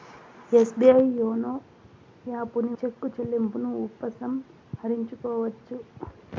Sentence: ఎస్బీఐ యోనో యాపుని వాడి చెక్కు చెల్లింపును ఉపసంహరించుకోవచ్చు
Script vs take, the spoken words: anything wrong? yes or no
yes